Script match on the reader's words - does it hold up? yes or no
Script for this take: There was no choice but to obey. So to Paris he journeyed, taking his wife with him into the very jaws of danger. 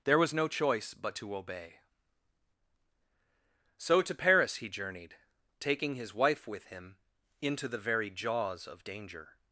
yes